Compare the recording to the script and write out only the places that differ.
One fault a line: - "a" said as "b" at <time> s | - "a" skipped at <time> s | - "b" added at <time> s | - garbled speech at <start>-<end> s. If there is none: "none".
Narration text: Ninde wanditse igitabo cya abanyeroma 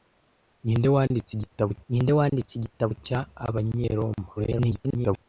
- "ninde wanditse igitabo" added at 1.9 s
- garbled speech at 4.4-5.3 s